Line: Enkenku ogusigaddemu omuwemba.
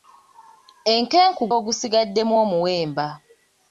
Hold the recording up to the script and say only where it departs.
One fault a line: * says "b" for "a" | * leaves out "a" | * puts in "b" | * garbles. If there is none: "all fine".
all fine